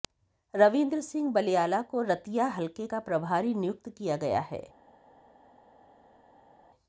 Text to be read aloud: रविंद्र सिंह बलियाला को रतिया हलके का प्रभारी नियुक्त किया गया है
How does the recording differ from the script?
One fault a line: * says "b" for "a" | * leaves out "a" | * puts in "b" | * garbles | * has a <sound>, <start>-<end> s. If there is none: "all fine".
all fine